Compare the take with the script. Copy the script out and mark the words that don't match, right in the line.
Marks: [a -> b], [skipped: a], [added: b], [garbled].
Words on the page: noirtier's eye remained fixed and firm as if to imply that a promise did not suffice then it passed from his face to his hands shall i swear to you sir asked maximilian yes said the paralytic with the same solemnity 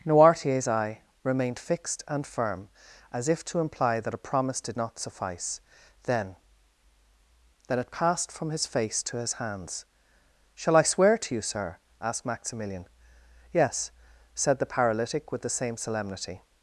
noirtier's eye remained fixed and firm as if to imply that a promise did not suffice then [added: then] it passed from his face to his hands shall i swear to you sir asked maximilian yes said the paralytic with the same solemnity